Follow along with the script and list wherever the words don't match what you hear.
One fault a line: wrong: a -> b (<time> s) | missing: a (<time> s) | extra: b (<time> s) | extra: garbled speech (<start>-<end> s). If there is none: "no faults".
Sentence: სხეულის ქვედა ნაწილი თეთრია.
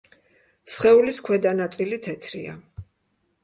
no faults